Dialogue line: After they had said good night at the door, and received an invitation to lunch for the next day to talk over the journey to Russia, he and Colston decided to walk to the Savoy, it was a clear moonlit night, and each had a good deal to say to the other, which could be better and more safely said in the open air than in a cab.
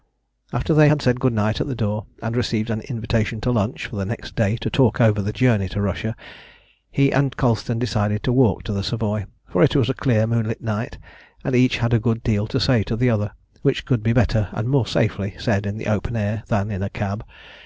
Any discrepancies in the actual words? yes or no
yes